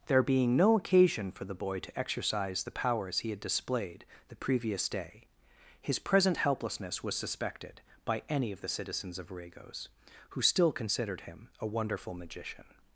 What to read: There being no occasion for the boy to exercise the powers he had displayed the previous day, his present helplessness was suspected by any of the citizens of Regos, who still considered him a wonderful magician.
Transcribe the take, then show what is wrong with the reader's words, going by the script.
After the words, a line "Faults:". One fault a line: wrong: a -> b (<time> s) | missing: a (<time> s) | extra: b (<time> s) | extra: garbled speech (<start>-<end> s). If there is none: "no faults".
There being no occasion for the boy to exercise the powers he had displayed the previous day, his present helplessness was suspected by any of the citizens of Regos, who still considered him a wonderful magician.
Faults:
no faults